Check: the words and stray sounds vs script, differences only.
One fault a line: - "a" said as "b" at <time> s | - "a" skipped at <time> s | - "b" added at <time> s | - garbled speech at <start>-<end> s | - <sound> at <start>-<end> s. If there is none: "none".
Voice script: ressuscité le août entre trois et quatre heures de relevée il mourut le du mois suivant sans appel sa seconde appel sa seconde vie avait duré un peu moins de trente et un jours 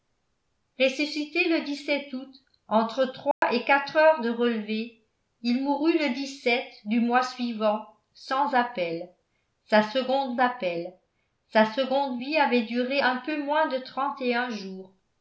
- dropout at 3.3-3.4 s